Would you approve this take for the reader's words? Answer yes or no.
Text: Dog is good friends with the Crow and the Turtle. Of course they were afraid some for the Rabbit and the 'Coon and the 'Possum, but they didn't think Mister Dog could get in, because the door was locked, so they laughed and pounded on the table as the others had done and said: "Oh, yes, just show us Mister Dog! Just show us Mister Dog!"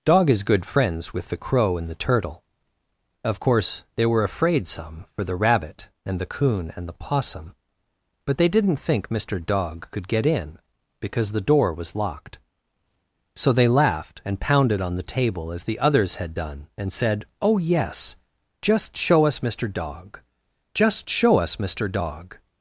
yes